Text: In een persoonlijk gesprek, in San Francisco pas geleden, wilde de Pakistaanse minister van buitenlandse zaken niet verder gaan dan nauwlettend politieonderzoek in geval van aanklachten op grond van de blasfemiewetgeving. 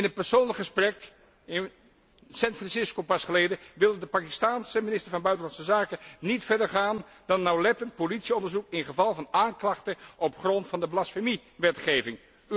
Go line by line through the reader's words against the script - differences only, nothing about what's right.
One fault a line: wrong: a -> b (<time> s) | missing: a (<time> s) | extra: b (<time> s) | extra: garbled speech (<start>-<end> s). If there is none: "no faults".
no faults